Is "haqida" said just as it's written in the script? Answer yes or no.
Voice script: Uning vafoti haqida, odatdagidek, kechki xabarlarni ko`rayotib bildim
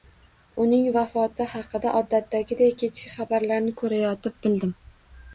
yes